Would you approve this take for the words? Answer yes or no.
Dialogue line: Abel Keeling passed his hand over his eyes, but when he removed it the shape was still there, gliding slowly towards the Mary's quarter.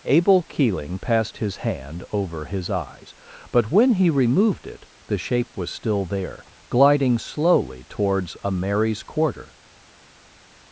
no